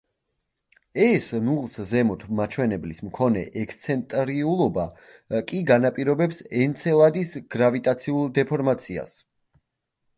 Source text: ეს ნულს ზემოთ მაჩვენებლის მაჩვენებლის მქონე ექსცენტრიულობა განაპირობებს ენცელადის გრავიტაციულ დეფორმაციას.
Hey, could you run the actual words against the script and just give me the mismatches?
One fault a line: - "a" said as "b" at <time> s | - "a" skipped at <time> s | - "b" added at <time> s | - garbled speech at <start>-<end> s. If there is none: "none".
- "მაჩვენებლის" skipped at 3.0 s
- "კი" added at 5.5 s